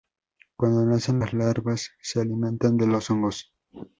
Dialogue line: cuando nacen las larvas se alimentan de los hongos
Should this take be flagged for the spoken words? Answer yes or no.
no